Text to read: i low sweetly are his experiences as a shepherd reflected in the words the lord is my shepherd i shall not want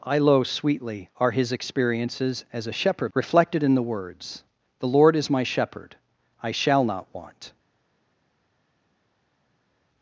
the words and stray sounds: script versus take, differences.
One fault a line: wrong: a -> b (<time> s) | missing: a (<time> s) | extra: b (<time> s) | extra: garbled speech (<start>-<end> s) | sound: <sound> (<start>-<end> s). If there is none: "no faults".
no faults